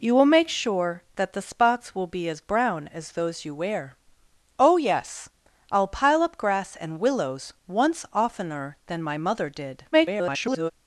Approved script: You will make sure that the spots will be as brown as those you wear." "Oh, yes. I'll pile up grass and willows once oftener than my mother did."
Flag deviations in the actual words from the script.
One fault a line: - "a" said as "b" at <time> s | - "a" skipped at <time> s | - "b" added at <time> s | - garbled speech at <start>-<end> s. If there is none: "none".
- garbled speech at 9.9-10.7 s